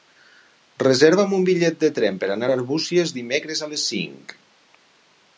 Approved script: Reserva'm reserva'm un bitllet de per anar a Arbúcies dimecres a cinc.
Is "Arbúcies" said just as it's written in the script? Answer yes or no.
yes